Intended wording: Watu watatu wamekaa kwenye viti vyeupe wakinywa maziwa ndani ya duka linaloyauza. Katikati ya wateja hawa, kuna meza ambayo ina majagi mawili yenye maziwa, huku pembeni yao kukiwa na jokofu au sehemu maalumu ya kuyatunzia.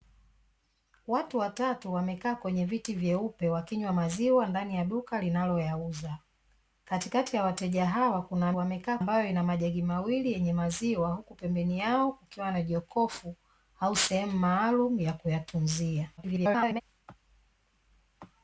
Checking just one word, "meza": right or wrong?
wrong